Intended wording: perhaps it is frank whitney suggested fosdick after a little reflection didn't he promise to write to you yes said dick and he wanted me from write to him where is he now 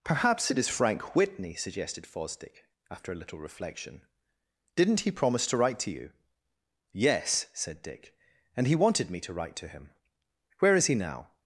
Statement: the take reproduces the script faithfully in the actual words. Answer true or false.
false